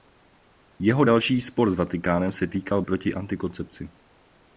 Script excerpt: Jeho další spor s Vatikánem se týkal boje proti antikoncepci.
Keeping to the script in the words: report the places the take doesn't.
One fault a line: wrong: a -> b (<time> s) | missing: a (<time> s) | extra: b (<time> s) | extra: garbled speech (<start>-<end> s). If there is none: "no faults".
missing: boje (2.8 s)